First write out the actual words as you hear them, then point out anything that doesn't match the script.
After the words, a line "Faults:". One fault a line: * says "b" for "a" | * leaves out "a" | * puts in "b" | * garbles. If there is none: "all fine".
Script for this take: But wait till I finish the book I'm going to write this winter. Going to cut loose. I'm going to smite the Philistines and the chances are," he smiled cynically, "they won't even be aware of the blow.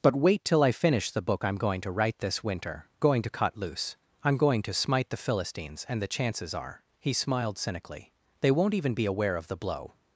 But wait till I finish the book I'm going to write this winter. Going to cut loose. I'm going to smite the Philistines and the chances are," he smiled cynically, "they won't even be aware of the blow.
Faults:
all fine